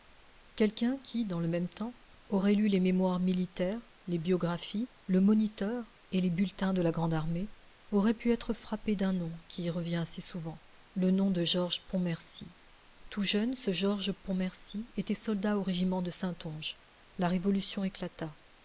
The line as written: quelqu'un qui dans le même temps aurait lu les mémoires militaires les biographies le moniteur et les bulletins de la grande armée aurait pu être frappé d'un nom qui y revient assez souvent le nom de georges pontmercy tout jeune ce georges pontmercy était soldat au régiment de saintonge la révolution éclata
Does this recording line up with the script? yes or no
yes